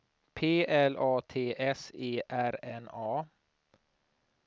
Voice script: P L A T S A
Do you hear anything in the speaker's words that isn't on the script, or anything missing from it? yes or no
yes